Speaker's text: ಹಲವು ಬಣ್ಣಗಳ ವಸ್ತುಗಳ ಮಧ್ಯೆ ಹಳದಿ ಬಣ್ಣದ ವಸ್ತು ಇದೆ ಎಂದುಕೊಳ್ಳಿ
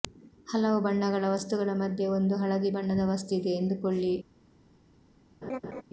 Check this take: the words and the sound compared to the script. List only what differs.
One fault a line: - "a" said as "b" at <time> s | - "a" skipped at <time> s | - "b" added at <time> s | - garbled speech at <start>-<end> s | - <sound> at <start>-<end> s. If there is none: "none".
- "ಒಂದು" added at 2.1 s
- laugh at 5.4-5.8 s